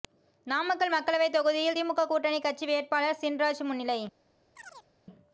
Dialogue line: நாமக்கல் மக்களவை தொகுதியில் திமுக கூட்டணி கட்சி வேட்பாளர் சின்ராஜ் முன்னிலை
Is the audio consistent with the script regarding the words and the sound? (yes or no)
no